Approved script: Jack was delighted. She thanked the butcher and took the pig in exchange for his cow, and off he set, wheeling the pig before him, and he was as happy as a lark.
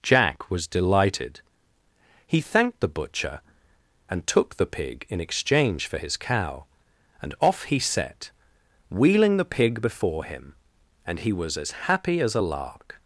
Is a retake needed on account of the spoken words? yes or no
yes